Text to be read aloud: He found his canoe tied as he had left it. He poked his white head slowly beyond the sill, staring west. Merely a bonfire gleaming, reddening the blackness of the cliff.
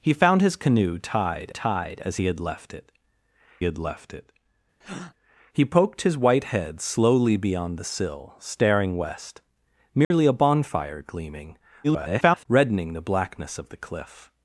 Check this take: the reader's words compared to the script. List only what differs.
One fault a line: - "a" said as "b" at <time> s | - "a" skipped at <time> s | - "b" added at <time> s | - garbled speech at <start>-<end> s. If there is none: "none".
- "tied" added at 1.5 s
- "had left it" added at 3.6 s
- garbled speech at 11.8-12.5 s